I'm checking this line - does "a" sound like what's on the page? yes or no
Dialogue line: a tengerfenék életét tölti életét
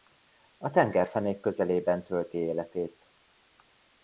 yes